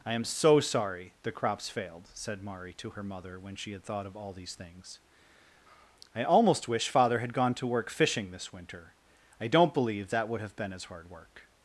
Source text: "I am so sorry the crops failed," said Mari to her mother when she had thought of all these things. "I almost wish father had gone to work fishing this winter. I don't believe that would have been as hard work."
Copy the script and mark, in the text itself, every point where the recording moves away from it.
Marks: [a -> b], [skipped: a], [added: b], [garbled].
"I am so sorry the crops failed," said Mari to her mother when she had thought of all these things. "I almost wish father had gone to work fishing this winter. I don't believe that would have been as hard work."